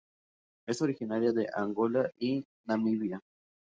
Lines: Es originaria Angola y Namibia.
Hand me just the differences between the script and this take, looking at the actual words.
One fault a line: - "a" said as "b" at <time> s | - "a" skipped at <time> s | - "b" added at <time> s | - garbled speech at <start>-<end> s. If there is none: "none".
- "de" added at 1.3 s